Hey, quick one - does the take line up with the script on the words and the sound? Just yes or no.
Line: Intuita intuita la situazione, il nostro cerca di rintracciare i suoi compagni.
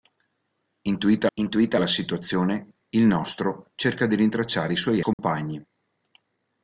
no